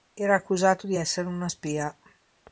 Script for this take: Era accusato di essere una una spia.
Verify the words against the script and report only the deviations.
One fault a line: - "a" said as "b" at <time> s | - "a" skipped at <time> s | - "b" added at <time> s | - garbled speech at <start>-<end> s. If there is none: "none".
- "una" skipped at 1.5 s